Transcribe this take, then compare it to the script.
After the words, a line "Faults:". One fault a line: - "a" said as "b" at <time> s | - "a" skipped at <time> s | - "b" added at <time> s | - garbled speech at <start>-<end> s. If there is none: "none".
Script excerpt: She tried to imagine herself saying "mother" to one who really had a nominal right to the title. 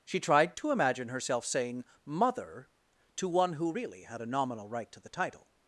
She tried to imagine herself saying "mother" to one who really had a nominal right to the title.
Faults:
none